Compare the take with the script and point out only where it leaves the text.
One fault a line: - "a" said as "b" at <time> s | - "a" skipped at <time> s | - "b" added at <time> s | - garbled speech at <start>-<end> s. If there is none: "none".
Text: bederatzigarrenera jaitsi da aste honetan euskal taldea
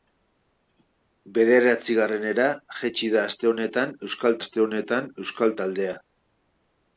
- "aste honetan euskal" added at 4.4 s